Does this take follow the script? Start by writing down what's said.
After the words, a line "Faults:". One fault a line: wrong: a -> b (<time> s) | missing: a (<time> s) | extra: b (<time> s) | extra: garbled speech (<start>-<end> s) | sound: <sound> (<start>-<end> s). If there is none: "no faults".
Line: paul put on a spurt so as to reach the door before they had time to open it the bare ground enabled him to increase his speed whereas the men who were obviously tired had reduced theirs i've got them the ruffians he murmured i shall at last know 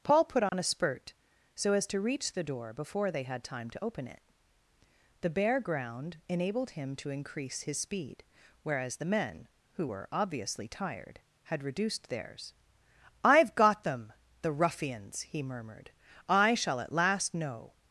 paul put on a spurt so as to reach the door before they had time to open it the bare ground enabled him to increase his speed whereas the men who were obviously tired had reduced theirs i've got them the ruffians he murmured i shall at last know
Faults:
sound: dropout (0.5-0.5 s)